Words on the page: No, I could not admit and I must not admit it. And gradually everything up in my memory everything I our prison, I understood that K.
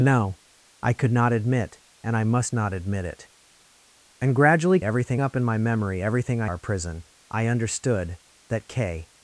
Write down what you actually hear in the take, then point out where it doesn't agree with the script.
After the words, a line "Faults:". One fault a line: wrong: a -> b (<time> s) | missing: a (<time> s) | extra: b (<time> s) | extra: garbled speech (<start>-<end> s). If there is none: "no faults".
No, I could not admit and I must not admit it. And gradually everything up in my memory everything I our prison, I understood that K.
Faults:
no faults